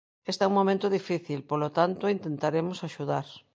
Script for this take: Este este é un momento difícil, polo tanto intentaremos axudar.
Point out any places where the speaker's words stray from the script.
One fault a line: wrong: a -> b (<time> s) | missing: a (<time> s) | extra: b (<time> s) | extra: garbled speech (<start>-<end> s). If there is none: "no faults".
missing: este (0.4 s)